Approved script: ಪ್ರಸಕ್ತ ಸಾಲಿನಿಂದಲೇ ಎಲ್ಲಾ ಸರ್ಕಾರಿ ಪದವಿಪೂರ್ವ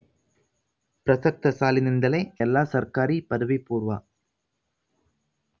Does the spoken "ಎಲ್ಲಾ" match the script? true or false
true